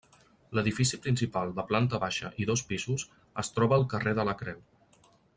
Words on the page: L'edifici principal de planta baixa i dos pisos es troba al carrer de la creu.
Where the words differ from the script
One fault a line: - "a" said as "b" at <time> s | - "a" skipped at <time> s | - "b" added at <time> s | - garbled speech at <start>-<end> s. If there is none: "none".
none